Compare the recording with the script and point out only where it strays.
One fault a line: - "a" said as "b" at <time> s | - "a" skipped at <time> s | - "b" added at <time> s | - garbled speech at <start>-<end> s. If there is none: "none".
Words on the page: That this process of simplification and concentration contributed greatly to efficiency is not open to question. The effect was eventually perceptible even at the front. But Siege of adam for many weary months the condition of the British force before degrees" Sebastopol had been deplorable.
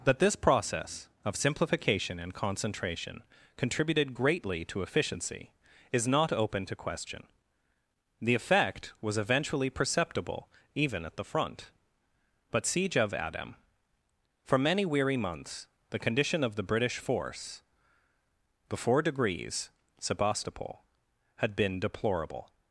none